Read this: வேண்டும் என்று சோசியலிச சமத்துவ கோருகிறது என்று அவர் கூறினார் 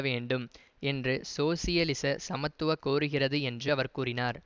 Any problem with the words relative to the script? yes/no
no